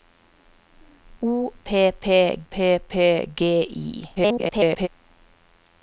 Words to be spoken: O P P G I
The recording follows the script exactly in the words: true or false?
false